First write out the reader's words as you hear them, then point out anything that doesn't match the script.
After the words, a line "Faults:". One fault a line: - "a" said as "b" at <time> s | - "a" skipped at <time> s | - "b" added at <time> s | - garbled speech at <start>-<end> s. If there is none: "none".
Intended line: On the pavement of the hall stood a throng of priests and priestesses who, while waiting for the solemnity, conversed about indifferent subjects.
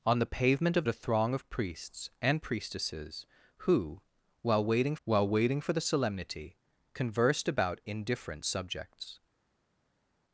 On the pavement of a throng of priests and priestesses who, while waiting while waiting for the solemnity, conversed about indifferent subjects.
Faults:
- "the hall stood" skipped at 0.8 s
- "while waiting" added at 5.0 s